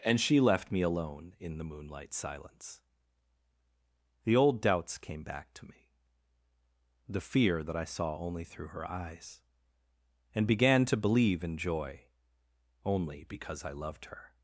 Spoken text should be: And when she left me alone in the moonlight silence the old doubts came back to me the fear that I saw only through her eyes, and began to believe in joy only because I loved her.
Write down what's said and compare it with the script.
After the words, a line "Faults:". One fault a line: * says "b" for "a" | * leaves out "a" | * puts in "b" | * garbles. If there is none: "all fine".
And she left me alone in the moonlight silence the old doubts came back to me the fear that I saw only through her eyes, and began to believe in joy only because I loved her.
Faults:
* leaves out "when"